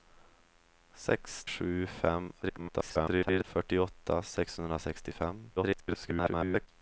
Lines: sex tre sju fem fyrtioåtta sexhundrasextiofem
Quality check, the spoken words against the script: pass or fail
fail